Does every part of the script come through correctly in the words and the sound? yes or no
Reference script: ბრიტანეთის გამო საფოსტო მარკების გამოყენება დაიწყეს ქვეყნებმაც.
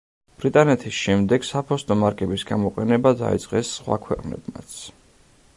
no